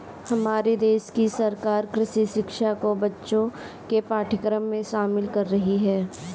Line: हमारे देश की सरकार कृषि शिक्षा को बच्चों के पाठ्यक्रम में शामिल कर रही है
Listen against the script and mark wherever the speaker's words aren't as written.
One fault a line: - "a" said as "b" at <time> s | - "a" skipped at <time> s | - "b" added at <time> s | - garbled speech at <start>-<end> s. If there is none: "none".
none